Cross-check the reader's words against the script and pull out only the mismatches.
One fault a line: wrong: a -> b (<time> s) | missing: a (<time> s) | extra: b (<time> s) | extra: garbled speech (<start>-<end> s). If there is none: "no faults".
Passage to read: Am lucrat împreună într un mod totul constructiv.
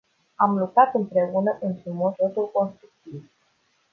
no faults